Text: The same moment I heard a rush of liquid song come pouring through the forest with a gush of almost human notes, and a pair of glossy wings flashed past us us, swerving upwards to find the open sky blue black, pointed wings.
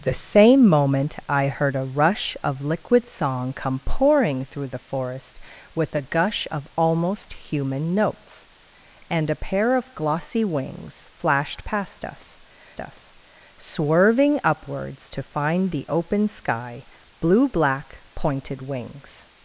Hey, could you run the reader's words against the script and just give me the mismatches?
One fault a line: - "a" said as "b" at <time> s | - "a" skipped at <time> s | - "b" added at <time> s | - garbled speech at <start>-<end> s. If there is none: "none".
none